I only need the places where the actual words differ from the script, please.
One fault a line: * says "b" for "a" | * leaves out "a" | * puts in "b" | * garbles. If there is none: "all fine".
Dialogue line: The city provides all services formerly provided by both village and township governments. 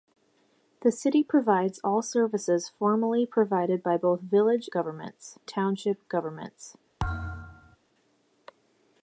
* says "governments" for "and"